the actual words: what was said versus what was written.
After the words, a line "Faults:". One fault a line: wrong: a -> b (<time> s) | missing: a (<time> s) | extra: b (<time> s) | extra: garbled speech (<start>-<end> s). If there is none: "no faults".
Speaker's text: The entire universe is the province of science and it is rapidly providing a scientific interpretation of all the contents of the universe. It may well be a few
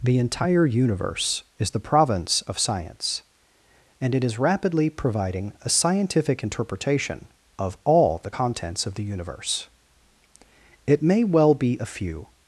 The entire universe is the province of science and it is rapidly providing a scientific interpretation of all the contents of the universe. It may well be a few
Faults:
no faults